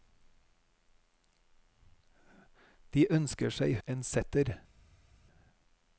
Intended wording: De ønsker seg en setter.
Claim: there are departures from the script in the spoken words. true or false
false